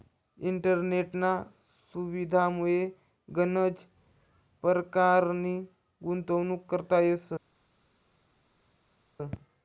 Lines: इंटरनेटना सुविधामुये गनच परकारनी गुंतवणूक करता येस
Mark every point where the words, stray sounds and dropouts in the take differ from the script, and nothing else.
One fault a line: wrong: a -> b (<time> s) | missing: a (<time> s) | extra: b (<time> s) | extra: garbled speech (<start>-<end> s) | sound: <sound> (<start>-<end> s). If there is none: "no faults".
no faults